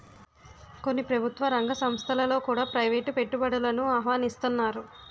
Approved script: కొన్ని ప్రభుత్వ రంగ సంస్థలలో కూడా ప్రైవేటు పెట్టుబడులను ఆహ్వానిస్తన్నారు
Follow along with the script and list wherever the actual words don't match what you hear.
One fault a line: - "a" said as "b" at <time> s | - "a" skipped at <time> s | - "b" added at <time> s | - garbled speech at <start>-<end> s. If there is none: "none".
none